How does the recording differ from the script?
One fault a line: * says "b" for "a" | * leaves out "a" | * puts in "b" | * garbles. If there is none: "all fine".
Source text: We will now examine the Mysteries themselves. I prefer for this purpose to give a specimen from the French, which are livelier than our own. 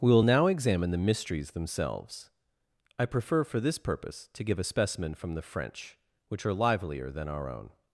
all fine